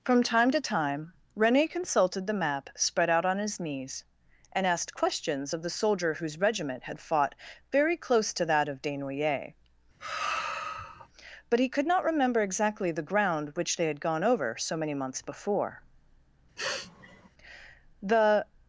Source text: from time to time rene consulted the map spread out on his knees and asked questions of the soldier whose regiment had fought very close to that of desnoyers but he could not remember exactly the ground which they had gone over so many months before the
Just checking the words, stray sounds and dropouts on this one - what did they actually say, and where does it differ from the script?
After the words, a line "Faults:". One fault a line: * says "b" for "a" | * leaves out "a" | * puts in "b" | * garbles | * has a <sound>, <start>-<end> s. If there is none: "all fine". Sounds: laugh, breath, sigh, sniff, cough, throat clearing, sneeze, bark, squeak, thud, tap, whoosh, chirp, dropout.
from time to time rene consulted the map spread out on his knees and asked questions of the soldier whose regiment had fought very close to that of desnoyers but he could not remember exactly the ground which they had gone over so many months before the
Faults:
* has a sigh, 10.0-11.1 s
* has a sniff, 16.6-17.3 s